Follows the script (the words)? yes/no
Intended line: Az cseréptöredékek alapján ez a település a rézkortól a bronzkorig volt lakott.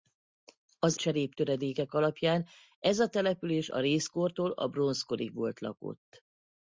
yes